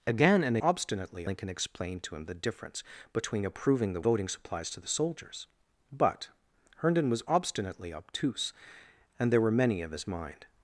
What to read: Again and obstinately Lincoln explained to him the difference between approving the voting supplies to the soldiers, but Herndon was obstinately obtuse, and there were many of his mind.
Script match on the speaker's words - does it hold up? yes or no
yes